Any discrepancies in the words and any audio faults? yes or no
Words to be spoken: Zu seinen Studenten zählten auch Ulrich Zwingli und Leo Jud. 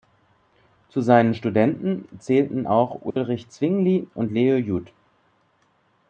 yes